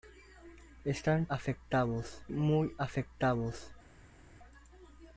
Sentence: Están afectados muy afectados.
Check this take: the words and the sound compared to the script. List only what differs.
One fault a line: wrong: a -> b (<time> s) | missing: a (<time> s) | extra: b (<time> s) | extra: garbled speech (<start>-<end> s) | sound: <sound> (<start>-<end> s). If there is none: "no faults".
no faults